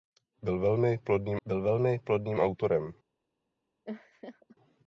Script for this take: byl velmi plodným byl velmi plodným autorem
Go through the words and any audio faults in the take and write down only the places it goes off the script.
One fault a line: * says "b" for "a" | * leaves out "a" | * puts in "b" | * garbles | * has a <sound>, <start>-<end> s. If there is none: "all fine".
* has a laugh, 3.8-4.6 s